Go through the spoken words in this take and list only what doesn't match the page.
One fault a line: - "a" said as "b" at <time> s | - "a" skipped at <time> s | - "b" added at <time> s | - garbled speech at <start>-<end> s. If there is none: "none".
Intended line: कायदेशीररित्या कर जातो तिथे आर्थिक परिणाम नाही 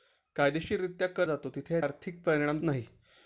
none